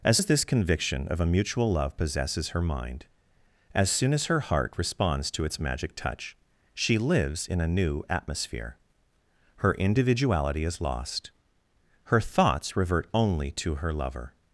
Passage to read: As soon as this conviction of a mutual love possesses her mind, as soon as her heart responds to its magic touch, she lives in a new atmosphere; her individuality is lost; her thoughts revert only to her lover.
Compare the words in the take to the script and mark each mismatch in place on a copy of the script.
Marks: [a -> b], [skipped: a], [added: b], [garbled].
As [skipped: soon] as this conviction of a mutual love possesses her mind, as soon as her heart responds to its magic touch, she lives in a new atmosphere; her individuality is lost; her thoughts revert only to her lover.